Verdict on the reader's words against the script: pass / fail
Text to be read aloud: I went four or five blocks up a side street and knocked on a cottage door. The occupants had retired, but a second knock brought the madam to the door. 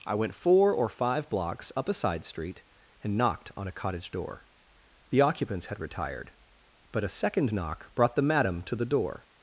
pass